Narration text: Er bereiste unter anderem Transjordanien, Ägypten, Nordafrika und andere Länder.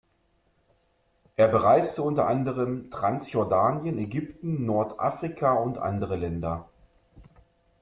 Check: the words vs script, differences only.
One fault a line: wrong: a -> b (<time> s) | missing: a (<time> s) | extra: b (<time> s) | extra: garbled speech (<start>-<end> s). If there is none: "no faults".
no faults